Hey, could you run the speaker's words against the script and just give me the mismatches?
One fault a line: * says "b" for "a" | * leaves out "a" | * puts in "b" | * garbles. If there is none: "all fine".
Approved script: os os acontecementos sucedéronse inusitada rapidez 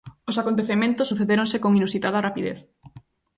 * leaves out "os"
* puts in "con"